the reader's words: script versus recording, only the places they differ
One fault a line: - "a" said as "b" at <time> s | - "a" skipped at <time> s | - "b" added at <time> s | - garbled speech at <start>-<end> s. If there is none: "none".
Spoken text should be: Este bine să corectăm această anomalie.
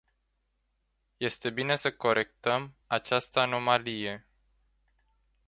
none